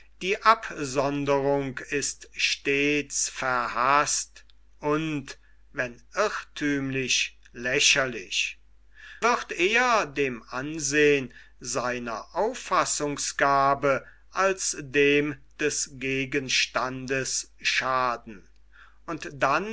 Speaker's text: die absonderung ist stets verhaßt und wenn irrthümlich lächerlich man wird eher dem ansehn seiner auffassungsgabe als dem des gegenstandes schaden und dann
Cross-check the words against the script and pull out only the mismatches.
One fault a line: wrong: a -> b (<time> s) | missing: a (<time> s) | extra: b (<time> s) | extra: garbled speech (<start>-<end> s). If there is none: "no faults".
missing: man (8.6 s)